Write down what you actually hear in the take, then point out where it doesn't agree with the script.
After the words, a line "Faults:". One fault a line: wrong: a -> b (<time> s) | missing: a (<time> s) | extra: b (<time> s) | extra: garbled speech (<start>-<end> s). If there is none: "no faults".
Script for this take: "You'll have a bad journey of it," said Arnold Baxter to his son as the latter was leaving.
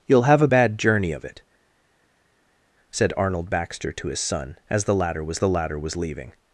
"You'll have a bad journey of it," said Arnold Baxter to his son as the latter was the latter was leaving.
Faults:
extra: the latter was (5.4 s)